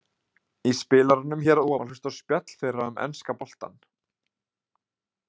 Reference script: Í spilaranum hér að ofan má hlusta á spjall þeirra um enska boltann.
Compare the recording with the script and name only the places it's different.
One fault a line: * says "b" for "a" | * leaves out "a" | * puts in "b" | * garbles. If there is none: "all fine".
* leaves out "ofan"